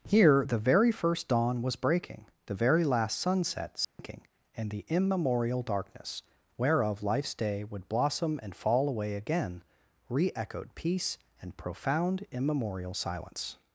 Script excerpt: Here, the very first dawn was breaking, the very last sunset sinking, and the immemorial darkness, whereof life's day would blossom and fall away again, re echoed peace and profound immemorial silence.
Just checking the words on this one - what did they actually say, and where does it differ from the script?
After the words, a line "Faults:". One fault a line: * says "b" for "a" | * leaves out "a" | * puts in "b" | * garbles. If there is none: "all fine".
Here, the very first dawn was breaking, the very last sunset sinking, and the immemorial darkness, whereof life's day would blossom and fall away again, re echoed peace and profound immemorial silence.
Faults:
all fine